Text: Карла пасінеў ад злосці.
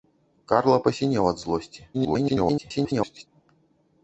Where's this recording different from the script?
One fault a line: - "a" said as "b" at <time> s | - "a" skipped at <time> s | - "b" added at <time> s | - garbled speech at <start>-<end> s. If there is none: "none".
- garbled speech at 1.9-3.3 s